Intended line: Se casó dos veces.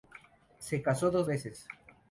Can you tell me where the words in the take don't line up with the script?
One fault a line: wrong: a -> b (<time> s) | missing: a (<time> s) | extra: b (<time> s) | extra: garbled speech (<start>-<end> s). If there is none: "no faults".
no faults